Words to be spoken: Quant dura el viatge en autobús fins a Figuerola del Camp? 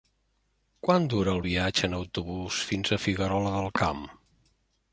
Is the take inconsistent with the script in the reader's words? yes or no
no